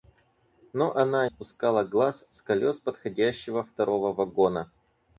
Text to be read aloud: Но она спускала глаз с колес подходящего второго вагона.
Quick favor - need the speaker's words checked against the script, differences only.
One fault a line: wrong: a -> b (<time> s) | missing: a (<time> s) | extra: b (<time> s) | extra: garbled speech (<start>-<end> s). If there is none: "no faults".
no faults